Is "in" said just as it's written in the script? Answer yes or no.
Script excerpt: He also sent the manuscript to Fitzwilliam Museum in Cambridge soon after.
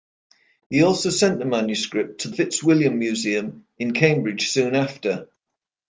yes